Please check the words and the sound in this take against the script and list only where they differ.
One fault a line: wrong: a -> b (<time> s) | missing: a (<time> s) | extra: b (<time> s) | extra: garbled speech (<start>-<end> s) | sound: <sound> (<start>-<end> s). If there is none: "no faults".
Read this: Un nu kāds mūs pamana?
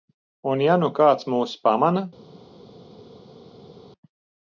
extra: ja (0.7 s)